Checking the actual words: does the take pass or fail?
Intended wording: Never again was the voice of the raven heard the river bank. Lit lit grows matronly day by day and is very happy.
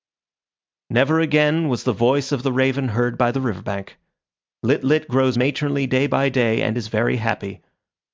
fail